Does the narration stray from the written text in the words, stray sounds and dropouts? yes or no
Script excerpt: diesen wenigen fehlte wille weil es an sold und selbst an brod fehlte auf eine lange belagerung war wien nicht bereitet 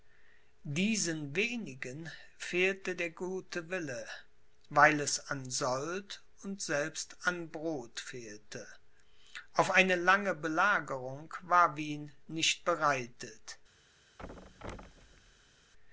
yes